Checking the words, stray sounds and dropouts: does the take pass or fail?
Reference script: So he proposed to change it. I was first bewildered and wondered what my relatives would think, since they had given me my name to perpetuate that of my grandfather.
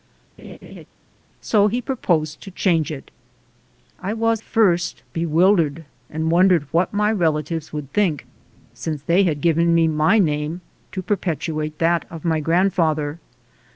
fail